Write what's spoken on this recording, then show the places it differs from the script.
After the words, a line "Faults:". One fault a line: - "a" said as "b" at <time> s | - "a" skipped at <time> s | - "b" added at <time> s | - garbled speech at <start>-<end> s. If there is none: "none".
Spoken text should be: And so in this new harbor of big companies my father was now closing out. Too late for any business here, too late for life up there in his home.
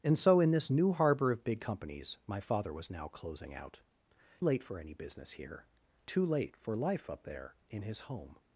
And so in this new harbor of big companies my father was now closing out. Late for any business here, too late for life up there in his home.
Faults:
- "Too" skipped at 3.8 s